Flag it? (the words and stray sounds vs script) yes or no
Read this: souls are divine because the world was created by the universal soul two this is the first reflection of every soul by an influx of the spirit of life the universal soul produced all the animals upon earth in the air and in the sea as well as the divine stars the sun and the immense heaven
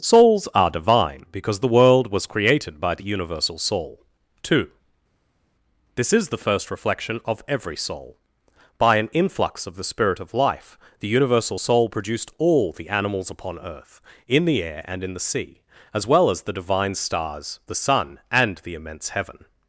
no